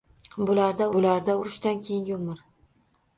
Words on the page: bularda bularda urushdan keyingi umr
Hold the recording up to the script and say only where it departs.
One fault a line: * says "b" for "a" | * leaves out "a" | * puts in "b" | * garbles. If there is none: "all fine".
all fine